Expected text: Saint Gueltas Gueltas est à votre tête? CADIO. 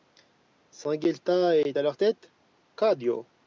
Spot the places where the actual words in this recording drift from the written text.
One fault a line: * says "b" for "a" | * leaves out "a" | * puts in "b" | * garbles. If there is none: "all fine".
* leaves out "Gueltas"
* says "leur" for "votre"